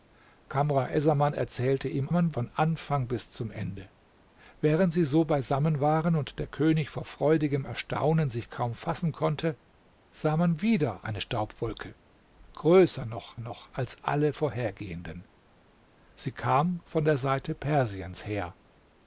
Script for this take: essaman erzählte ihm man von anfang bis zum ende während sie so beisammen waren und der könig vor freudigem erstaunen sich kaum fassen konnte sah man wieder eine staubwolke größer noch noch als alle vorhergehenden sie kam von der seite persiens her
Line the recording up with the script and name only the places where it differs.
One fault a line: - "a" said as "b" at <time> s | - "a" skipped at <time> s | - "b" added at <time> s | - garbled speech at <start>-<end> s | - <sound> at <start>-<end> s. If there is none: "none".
none